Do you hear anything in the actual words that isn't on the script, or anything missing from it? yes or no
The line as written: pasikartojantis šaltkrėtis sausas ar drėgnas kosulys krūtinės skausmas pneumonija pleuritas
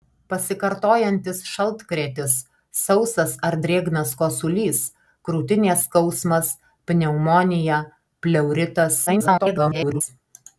yes